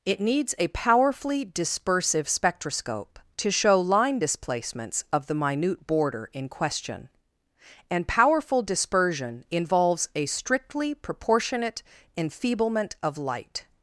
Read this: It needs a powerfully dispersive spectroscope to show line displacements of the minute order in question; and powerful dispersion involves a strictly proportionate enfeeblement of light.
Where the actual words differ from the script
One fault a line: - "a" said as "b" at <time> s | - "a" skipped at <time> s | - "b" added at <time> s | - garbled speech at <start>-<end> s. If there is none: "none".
- "order" said as "border" at 5.9 s